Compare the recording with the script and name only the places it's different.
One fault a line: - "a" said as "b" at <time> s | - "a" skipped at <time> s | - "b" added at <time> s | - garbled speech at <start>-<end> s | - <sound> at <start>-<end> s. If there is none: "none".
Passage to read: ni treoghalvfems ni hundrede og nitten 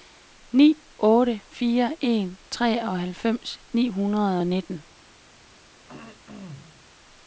- "otte fire en" added at 1.0 s
- throat clearing at 5.9-6.9 s